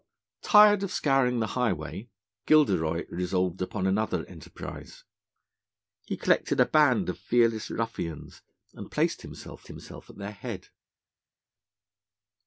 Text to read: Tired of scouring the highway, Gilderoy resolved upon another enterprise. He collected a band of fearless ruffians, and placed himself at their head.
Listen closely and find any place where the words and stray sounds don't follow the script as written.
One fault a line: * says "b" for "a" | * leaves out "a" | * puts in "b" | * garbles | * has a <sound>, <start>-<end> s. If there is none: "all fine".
* puts in "himself"